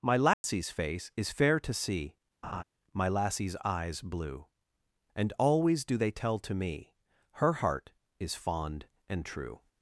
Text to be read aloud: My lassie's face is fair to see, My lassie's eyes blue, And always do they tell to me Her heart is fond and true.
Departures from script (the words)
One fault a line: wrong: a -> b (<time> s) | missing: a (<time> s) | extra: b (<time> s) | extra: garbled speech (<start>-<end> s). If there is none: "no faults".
no faults